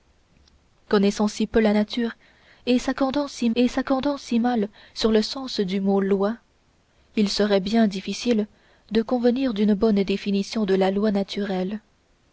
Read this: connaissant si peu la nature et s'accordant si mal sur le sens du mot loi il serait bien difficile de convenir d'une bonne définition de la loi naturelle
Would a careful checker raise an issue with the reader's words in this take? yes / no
yes